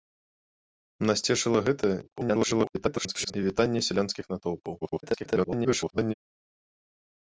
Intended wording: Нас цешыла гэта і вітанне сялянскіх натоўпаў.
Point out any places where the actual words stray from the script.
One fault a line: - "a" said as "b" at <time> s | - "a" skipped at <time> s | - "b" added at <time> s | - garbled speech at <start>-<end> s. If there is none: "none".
- garbled speech at 2.0-3.3 s
- garbled speech at 4.8-6.1 s